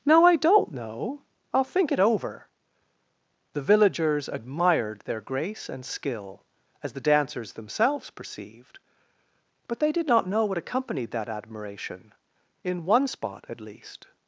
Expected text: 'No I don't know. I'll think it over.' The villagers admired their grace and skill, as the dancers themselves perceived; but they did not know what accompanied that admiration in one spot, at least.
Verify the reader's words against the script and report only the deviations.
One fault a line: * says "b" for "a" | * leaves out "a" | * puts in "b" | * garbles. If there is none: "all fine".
all fine